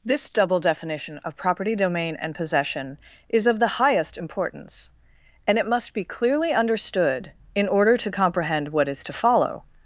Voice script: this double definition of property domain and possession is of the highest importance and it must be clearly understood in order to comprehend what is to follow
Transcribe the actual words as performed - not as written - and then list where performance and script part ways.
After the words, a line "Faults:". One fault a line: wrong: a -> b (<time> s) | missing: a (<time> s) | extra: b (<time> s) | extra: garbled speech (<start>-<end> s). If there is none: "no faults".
this double definition of property domain and possession is of the highest importance and it must be clearly understood in order to comprehend what is to follow
Faults:
no faults